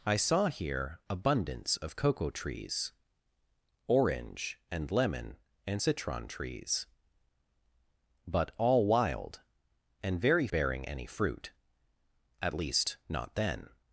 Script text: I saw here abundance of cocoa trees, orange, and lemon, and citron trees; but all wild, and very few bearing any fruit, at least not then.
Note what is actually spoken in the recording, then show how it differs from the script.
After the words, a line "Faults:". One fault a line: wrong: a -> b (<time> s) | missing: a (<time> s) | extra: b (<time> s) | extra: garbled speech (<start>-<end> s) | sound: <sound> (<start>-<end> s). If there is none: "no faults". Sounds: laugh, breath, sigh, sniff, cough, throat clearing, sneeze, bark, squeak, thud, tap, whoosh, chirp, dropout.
I saw here abundance of cocoa trees, orange, and lemon, and citron trees; but all wild, and very bearing any fruit, at least not then.
Faults:
missing: few (10.5 s)